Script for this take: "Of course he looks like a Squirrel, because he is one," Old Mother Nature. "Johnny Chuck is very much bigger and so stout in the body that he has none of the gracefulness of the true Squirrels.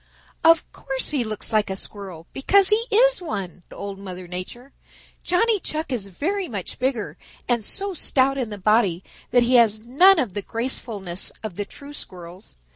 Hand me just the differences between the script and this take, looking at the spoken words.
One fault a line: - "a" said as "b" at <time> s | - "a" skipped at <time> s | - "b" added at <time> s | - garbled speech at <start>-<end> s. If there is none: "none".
none